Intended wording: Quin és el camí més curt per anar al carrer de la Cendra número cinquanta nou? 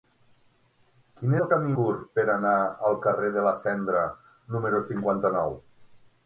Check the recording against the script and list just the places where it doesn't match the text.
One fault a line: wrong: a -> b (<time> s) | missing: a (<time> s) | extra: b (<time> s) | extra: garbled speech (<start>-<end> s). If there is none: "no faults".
missing: és (1.4 s)
missing: més (1.7 s)